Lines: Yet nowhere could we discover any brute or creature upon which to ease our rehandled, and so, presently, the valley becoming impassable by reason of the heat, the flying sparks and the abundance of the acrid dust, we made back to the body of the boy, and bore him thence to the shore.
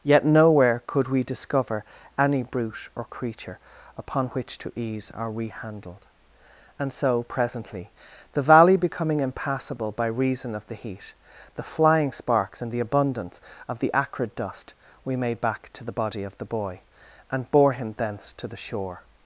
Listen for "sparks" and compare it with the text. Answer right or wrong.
right